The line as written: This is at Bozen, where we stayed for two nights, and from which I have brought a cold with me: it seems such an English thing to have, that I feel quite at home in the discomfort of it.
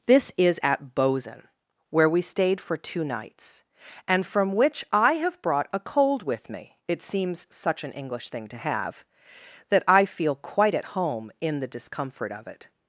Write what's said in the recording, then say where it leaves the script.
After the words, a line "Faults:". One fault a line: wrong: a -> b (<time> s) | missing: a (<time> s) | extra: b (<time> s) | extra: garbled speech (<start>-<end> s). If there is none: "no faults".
This is at Bozen, where we stayed for two nights, and from which I have brought a cold with me: it seems such an English thing to have, that I feel quite at home in the discomfort of it.
Faults:
no faults